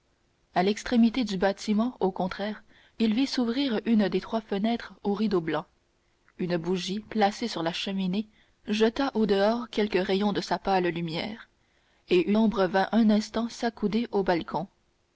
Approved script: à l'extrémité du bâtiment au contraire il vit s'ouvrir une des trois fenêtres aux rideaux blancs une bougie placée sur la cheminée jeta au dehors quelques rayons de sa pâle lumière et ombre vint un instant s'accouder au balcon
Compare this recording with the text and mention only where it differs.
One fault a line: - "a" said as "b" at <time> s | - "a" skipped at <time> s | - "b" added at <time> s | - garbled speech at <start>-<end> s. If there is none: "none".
none